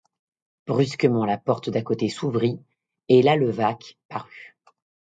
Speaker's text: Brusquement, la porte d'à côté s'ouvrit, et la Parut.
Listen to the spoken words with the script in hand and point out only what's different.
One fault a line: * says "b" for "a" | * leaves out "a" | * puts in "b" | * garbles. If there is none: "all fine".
* puts in "Levaque"